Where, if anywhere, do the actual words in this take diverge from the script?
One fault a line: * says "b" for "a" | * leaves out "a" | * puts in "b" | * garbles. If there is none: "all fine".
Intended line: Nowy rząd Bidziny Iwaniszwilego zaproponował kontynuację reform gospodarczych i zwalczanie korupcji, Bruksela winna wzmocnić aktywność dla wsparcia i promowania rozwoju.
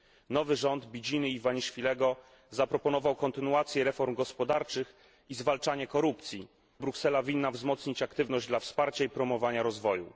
all fine